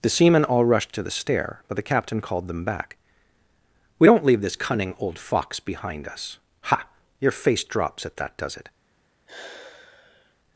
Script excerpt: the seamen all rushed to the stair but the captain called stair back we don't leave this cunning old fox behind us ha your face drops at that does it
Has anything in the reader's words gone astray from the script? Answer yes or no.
yes